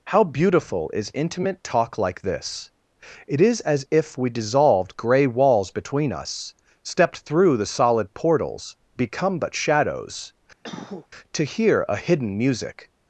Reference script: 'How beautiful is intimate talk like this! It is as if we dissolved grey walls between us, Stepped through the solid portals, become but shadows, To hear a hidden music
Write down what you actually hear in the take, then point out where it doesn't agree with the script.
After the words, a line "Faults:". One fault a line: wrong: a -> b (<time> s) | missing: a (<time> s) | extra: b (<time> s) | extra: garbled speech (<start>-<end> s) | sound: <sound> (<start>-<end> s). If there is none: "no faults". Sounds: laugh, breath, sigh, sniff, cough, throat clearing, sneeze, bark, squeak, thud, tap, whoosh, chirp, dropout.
'How beautiful is intimate talk like this! It is as if we dissolved grey walls between us, Stepped through the solid portals, become but shadows, To hear a hidden music
Faults:
sound: cough (10.6-11.1 s)